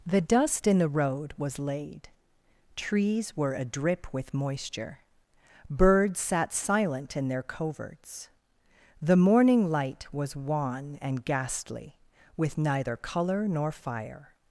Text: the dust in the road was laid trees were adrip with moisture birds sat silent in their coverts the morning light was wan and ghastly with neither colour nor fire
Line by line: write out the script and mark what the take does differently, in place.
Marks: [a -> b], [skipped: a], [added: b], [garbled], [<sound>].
the dust in the road was laid trees were adrip with moisture birds sat silent in their coverts the morning light was wan and ghastly with neither colour nor fire